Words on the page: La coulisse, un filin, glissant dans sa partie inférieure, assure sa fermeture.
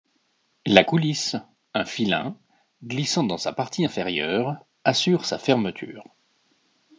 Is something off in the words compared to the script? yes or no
no